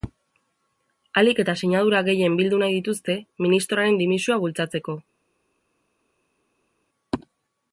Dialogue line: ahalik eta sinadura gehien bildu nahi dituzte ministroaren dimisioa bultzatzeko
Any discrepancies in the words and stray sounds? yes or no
no